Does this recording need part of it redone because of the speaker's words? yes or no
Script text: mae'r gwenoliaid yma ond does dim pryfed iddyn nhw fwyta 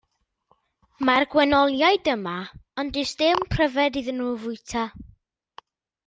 no